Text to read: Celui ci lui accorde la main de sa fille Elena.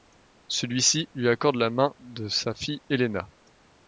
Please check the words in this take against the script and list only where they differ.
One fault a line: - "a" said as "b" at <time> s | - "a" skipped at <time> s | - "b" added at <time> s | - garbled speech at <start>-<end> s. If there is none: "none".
none